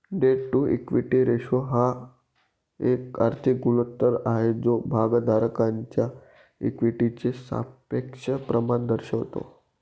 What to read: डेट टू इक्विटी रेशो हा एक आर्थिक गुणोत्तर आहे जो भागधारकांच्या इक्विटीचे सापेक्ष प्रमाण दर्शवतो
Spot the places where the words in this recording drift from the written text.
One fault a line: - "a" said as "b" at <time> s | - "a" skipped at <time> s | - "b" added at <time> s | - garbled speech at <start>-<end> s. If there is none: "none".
none